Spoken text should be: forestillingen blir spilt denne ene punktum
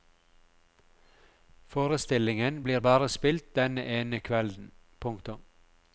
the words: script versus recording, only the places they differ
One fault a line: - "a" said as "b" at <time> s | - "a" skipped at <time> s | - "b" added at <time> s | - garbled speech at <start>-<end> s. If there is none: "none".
- "bare" added at 2.8 s
- "kvelden" added at 4.2 s